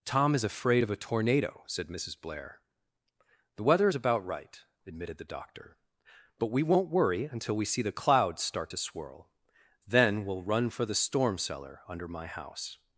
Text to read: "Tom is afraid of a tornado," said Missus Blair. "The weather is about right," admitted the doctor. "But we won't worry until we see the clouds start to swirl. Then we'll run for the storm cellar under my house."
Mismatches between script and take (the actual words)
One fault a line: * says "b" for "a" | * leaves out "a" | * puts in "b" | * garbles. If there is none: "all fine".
all fine